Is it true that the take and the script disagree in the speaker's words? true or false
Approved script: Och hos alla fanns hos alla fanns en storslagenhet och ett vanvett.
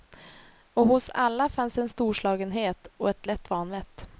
true